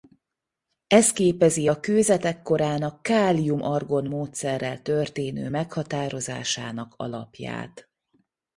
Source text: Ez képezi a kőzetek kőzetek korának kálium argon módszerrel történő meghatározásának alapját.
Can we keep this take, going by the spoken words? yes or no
no